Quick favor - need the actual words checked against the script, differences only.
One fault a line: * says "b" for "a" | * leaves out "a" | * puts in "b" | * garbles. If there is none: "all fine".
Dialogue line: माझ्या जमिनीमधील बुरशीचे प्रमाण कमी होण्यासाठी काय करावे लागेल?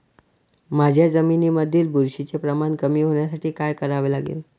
all fine